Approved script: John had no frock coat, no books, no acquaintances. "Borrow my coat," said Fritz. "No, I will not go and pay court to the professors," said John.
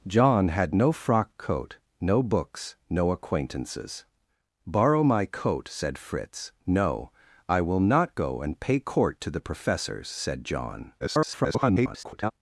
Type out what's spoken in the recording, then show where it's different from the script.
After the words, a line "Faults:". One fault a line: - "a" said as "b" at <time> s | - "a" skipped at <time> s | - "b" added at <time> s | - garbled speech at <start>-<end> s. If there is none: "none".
John had no frock coat, no books, no acquaintances. "Borrow my coat," said Fritz. "No, I will not go and pay court to the professors," said John. [garbled]
Faults:
- garbled speech at 11.0-12.3 s